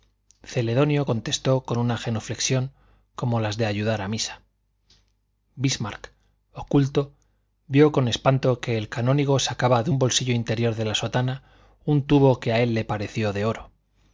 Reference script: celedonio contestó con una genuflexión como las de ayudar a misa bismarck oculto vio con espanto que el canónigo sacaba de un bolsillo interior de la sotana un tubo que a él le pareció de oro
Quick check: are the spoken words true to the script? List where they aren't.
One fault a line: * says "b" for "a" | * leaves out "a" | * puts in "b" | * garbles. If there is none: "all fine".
all fine